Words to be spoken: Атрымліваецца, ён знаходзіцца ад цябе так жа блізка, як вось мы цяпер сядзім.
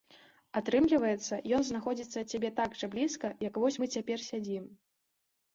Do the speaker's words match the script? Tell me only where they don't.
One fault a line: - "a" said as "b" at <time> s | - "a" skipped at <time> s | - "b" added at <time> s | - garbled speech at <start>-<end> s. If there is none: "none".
none